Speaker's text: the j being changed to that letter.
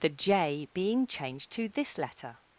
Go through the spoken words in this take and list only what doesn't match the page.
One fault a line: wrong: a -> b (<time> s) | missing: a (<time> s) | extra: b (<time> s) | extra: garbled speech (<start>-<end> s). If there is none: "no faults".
wrong: that -> this (1.7 s)